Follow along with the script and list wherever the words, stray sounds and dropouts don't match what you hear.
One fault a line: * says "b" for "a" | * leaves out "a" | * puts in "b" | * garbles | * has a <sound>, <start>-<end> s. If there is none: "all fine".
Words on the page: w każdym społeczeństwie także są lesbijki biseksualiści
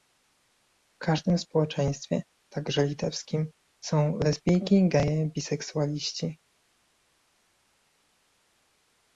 * puts in "litewskim"
* puts in "geje"